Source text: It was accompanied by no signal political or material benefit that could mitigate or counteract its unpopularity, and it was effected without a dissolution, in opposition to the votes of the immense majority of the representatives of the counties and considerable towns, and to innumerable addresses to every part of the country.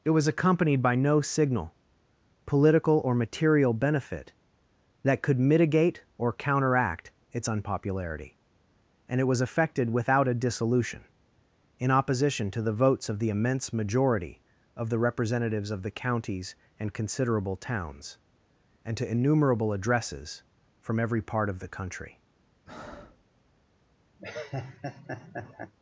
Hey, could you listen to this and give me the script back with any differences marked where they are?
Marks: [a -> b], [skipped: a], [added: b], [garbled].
It was accompanied by no signal political or material benefit that could mitigate or counteract its unpopularity, and it was effected without a dissolution, in opposition to the votes of the immense majority of the representatives of the counties and considerable towns, and to innumerable addresses [to -> from] every part of the country.